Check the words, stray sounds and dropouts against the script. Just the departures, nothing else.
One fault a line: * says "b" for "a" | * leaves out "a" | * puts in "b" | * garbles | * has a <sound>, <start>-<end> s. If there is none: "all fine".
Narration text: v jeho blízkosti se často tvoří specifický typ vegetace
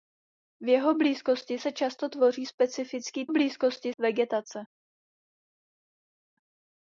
* says "blízkosti" for "typ"